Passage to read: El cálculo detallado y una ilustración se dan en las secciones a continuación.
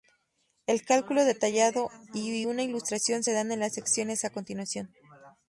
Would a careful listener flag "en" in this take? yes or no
no